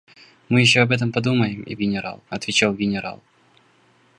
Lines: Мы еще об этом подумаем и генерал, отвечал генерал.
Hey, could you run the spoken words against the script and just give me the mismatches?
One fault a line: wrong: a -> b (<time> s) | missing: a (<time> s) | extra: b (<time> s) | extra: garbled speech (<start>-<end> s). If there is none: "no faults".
no faults